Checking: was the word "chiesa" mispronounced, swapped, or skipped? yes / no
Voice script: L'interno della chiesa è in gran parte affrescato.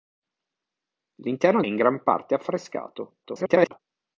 yes